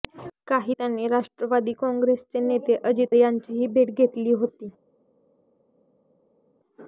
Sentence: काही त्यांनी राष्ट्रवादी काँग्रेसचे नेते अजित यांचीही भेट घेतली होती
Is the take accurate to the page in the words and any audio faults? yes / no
yes